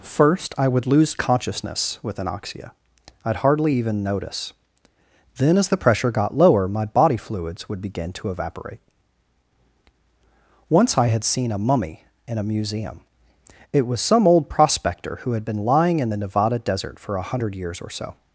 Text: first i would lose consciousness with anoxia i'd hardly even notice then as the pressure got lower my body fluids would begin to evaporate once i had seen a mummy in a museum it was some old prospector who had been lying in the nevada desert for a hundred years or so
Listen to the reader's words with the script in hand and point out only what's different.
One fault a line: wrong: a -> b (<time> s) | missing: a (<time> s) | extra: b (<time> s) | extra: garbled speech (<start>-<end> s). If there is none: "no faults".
no faults